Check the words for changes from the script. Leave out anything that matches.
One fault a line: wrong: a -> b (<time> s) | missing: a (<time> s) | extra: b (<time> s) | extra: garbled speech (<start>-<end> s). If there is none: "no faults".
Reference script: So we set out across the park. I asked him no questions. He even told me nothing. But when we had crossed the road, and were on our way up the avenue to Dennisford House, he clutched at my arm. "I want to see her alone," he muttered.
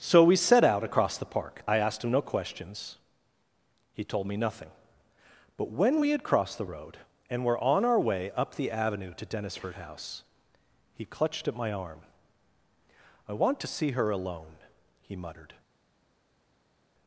missing: even (4.0 s)